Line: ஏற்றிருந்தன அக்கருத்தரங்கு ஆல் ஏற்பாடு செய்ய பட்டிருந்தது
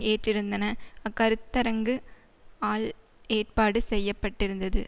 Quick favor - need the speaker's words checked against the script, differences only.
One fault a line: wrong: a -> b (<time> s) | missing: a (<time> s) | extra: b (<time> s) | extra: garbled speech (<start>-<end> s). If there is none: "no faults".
no faults